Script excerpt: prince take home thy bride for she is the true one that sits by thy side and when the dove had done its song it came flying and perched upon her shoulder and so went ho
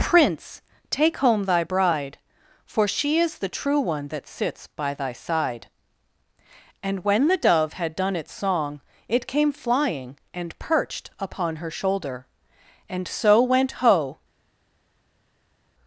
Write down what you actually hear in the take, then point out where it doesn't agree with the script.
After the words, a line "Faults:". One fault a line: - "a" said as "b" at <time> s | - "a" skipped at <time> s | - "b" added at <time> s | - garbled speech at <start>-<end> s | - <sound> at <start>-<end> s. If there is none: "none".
prince take home thy bride for she is the true one that sits by thy side and when the dove had done its song it came flying and perched upon her shoulder and so went ho
Faults:
none